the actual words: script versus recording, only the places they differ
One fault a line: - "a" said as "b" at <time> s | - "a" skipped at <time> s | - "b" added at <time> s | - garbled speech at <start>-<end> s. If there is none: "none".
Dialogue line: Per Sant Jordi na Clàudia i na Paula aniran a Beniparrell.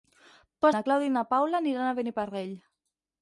- "Sant Jordi" skipped at 0.7 s